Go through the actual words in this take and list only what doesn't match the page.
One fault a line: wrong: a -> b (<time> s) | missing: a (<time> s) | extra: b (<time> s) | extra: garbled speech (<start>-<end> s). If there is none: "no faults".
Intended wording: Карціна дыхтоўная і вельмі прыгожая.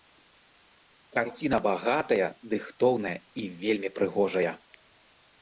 extra: багатая (1.6 s)